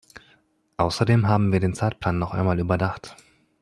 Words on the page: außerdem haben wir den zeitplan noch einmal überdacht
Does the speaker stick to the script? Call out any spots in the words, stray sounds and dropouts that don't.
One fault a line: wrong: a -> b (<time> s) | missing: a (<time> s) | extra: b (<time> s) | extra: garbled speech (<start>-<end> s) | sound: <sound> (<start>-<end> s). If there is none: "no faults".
no faults